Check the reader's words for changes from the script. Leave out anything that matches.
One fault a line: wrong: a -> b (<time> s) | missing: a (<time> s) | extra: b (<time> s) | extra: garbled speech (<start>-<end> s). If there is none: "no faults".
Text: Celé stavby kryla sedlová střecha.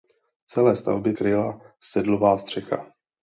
no faults